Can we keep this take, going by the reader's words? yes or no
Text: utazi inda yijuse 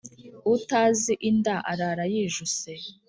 no